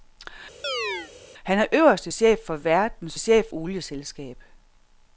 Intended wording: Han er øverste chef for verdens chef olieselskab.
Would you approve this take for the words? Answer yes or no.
yes